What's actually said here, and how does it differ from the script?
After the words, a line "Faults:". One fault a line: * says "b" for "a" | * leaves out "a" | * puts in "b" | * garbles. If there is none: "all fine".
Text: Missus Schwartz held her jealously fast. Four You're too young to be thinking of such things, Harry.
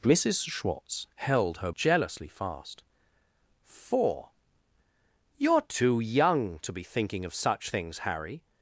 Missus Schwartz held her jealously fast. Four You're too young to be thinking of such things, Harry.
Faults:
all fine